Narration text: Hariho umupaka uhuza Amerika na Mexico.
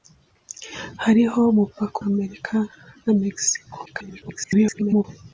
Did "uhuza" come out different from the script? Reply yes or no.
yes